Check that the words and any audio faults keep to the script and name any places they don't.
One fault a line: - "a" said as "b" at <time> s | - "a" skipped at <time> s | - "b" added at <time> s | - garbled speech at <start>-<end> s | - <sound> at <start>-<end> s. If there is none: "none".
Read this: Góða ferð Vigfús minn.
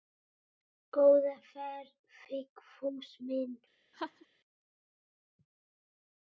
- laugh at 3.9-4.3 s